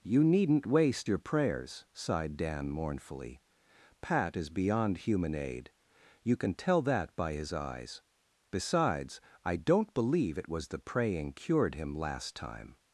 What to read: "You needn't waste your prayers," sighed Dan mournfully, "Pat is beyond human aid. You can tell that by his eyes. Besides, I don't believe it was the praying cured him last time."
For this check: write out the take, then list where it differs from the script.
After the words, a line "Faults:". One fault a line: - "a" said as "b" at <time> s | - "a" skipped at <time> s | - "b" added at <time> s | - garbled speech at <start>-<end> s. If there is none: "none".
"You needn't waste your prayers," sighed Dan mournfully, "Pat is beyond human aid. You can tell that by his eyes. Besides, I don't believe it was the praying cured him last time."
Faults:
none